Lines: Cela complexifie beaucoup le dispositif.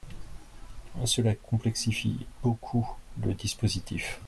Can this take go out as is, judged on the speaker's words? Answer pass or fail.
pass